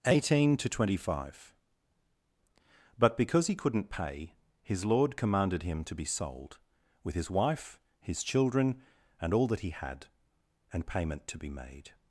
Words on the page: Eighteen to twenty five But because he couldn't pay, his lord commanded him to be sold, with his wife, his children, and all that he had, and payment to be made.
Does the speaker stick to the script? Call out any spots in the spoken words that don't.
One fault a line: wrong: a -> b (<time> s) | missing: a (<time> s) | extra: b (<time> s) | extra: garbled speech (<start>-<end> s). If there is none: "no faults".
no faults